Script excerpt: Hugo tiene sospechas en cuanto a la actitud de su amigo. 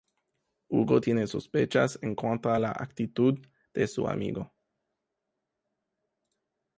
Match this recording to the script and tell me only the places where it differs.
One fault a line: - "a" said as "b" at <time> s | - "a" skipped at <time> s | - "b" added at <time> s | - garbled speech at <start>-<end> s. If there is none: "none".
none